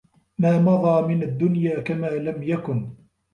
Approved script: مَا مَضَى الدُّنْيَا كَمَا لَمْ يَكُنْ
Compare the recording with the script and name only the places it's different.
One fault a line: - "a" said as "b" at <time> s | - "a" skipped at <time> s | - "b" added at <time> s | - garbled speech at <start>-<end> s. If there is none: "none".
- "مِنْ" added at 1.1 s